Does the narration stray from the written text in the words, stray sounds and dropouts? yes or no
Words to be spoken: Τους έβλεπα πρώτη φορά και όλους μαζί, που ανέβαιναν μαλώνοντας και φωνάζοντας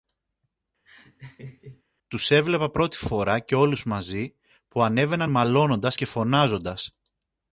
yes